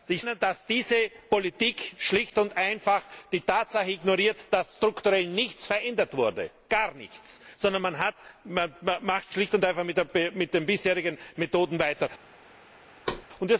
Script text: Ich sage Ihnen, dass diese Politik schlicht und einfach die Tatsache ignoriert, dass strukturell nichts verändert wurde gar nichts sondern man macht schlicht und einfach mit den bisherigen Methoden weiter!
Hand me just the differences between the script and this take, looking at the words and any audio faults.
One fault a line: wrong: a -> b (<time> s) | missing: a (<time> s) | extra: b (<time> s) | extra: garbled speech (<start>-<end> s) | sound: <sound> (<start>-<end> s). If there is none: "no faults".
missing: sage (0.2 s)
sound: thud (13.1-13.3 s)